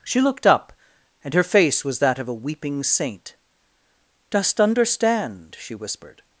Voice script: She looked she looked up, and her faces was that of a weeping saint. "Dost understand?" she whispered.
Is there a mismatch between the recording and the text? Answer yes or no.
yes